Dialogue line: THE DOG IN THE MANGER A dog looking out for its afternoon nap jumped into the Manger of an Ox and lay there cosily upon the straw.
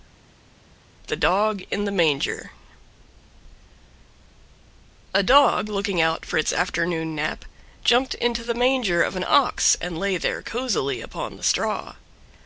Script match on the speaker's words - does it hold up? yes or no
yes